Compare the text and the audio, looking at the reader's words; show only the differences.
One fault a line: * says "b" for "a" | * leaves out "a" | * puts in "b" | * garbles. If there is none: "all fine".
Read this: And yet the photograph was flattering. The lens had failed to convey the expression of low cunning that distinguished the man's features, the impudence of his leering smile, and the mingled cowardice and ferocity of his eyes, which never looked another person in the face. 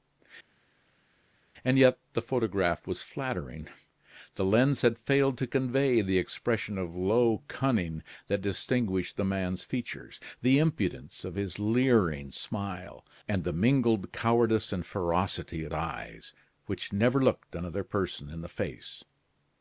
* leaves out "his"